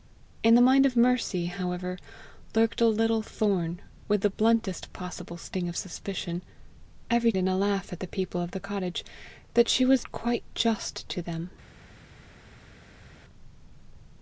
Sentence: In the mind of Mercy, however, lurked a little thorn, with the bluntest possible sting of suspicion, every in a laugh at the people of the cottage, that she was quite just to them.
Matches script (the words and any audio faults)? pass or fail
pass